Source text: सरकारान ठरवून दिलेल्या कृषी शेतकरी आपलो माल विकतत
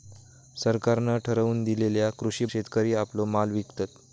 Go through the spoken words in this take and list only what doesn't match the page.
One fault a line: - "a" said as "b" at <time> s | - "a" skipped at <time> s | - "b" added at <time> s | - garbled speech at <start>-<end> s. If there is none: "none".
none